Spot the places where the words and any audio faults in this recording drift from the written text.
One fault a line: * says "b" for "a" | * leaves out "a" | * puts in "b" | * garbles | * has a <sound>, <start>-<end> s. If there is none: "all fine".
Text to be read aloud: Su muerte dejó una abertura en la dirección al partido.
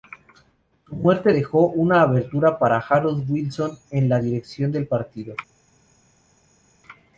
* puts in "para Harold Wilson"
* says "del" for "al"